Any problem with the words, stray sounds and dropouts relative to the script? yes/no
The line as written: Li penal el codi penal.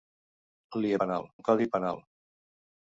no